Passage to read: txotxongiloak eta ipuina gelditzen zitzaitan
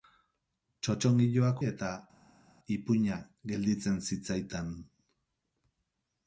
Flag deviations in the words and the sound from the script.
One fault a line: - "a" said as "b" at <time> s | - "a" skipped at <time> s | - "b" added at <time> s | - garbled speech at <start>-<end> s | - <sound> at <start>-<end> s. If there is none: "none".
none